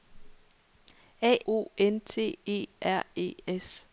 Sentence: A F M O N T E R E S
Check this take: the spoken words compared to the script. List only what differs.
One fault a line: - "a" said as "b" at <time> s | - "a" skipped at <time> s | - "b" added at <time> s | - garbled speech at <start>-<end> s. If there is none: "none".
- "F M" skipped at 1.4 s